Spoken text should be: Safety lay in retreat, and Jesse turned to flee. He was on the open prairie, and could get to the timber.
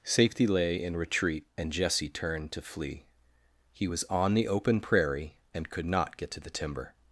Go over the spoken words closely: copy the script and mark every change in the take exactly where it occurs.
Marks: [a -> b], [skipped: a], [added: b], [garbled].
Safety lay in retreat, and Jesse turned to flee. He was on the open prairie, and could [added: not] get to the timber.